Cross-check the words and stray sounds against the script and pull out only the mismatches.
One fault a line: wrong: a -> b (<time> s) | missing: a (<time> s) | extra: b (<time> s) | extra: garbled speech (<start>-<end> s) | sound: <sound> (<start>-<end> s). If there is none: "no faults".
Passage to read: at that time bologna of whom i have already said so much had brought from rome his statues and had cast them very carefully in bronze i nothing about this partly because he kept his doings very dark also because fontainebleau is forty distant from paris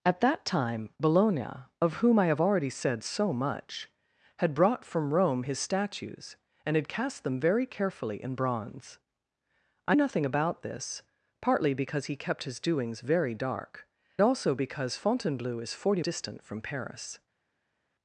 no faults